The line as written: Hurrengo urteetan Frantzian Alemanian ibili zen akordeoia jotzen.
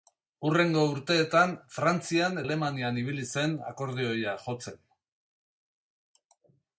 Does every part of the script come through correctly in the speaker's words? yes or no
yes